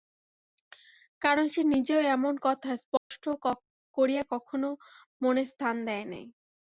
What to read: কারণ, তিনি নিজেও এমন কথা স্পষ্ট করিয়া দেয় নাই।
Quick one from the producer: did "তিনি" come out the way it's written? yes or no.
no